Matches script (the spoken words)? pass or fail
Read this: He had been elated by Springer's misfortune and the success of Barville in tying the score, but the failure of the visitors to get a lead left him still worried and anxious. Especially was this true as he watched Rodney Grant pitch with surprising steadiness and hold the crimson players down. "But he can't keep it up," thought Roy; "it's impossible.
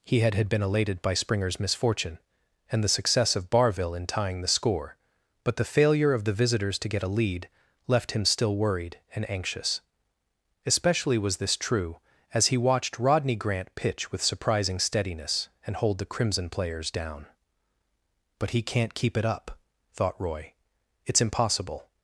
fail